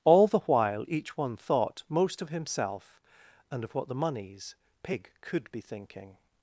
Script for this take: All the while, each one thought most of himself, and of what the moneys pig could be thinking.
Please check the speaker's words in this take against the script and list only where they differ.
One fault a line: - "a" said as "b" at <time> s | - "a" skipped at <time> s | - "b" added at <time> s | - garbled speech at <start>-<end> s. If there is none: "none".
none